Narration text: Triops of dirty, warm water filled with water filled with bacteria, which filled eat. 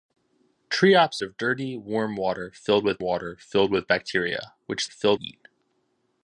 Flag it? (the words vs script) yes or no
no